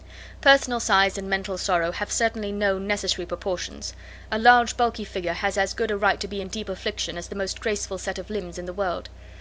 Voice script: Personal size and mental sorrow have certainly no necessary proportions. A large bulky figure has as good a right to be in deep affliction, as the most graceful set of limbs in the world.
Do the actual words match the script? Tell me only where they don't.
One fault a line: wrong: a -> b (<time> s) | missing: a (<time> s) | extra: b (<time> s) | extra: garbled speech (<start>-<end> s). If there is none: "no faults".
no faults